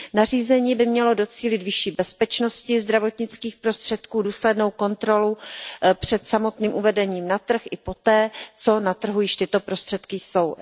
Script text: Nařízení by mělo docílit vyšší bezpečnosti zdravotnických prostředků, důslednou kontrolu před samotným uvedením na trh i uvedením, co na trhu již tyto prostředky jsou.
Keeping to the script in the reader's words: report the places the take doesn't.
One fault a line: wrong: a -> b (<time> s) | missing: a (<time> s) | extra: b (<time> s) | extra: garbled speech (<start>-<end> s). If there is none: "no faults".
wrong: uvedením -> poté (7.8 s)